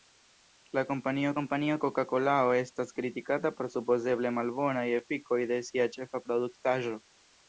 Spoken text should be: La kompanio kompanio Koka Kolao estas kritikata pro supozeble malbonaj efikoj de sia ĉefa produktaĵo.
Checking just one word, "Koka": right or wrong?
right